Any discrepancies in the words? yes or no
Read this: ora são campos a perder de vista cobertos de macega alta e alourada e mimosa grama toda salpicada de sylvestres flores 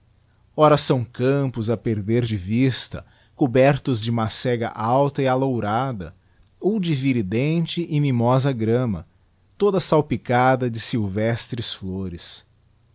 yes